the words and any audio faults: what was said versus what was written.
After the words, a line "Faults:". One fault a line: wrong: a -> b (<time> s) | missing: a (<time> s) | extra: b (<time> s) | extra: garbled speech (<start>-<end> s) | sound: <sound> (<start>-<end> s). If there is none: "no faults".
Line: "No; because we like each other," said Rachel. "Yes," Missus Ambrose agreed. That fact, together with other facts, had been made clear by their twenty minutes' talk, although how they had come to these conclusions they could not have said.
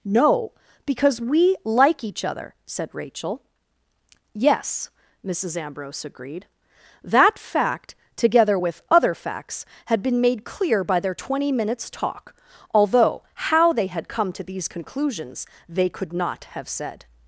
"No; because we like each other," said Rachel. "Yes," Missus Ambrose agreed. That fact, together with other facts, had been made clear by their twenty minutes' talk, although how they had come to these conclusions they could not have said.
Faults:
no faults